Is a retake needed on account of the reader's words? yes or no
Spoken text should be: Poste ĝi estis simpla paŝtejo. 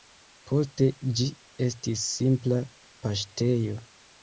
no